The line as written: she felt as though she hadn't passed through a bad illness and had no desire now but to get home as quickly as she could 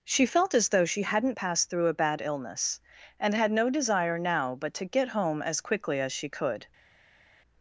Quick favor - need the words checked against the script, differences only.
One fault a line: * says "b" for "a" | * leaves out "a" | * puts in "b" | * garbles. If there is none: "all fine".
all fine